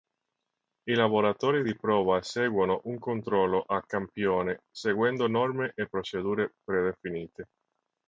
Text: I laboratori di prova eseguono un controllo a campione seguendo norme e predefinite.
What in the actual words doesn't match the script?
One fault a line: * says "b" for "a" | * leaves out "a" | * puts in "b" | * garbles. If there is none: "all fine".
* puts in "procedure"